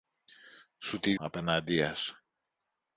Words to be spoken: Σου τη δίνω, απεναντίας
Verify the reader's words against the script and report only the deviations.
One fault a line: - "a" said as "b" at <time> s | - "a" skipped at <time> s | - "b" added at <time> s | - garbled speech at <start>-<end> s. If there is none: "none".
- "δίνω" skipped at 1.1 s